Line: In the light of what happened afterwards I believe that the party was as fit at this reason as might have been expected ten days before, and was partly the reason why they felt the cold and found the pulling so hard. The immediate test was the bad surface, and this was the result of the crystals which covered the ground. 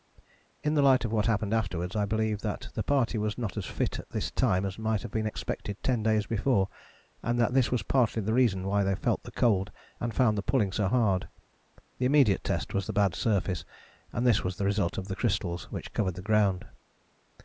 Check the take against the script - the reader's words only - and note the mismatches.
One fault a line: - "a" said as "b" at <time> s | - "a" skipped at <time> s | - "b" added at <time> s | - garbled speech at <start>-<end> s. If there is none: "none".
- "not" added at 3.4 s
- "reason" said as "time" at 4.3 s
- "that this" added at 7.4 s